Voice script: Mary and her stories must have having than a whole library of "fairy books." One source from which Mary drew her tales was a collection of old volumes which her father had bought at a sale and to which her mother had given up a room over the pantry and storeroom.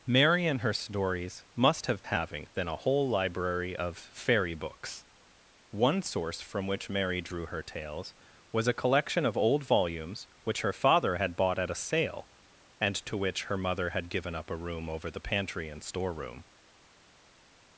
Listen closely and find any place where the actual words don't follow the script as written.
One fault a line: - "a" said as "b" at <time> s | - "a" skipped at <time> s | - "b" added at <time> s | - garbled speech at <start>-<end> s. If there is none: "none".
none